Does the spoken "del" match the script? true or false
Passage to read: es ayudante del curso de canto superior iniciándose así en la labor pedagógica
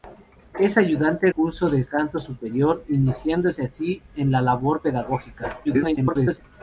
false